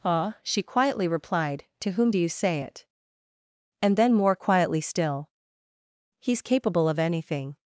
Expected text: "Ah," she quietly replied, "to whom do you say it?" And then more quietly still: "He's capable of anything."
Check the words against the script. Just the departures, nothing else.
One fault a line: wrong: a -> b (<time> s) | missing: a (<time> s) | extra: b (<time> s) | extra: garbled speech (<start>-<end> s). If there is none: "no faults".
no faults